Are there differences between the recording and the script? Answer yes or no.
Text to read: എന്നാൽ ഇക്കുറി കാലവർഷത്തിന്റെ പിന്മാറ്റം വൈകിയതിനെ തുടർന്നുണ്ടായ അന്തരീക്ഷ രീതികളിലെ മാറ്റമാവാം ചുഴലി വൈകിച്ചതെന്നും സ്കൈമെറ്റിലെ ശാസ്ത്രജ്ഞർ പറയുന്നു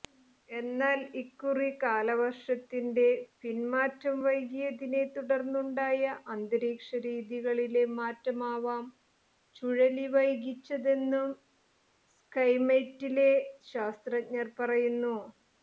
no